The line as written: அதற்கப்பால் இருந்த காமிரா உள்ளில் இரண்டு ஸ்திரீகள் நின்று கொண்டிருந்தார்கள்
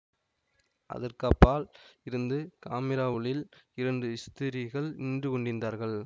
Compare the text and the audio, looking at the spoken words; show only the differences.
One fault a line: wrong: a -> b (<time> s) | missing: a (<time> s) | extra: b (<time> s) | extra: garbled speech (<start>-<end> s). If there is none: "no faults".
no faults